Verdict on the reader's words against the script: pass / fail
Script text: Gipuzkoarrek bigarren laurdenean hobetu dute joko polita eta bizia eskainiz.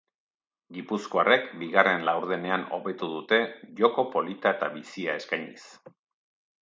pass